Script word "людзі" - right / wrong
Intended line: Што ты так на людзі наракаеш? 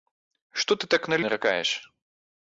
wrong